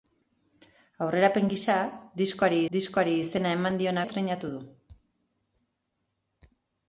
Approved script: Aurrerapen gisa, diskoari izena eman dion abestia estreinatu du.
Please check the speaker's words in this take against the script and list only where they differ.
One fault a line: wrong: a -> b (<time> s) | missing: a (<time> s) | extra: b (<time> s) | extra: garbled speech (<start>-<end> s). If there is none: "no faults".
extra: diskoari (2.8 s)
missing: abestia (4.0 s)